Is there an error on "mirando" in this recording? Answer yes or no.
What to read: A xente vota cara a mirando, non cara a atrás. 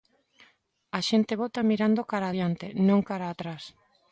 yes